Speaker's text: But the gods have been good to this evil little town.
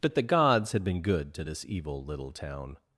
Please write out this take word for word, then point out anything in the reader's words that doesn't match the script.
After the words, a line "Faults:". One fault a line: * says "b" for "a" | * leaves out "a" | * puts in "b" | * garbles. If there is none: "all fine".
But the gods had been good to this evil little town.
Faults:
* says "had" for "have"